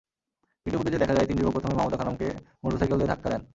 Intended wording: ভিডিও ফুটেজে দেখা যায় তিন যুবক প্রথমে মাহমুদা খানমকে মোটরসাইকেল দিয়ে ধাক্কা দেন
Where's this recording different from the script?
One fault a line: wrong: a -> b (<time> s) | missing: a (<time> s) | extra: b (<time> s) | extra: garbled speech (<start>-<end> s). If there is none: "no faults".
no faults